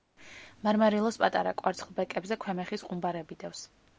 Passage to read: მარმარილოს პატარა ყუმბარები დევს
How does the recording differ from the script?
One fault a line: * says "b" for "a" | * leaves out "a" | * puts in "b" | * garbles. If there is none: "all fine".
* puts in "კვარცხლბეკებზე ქვემეხის"